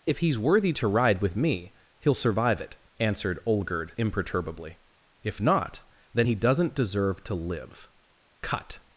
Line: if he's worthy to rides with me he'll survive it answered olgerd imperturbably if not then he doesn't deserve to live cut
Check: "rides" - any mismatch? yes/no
yes